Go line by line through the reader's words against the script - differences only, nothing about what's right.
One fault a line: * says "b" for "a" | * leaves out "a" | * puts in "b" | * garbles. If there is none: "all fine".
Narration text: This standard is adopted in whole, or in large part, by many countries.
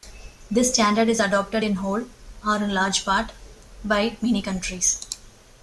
all fine